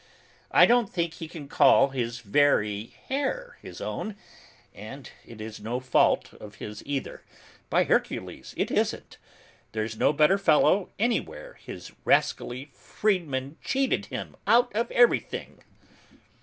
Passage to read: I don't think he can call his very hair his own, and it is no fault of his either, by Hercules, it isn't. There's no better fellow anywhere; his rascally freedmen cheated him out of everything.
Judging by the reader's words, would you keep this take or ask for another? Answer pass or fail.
pass